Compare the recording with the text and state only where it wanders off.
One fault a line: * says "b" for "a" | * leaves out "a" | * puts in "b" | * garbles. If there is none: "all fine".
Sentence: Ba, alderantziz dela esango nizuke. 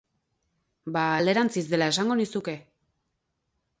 all fine